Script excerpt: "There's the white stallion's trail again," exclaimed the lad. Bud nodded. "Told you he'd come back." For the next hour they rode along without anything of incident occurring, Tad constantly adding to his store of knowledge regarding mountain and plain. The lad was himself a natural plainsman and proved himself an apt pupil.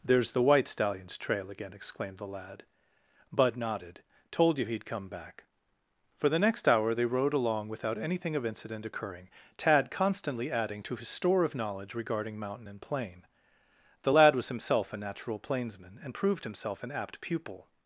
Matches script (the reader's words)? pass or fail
pass